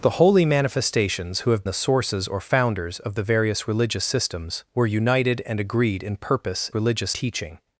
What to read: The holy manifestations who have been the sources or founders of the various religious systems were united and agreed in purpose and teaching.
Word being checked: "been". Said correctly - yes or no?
no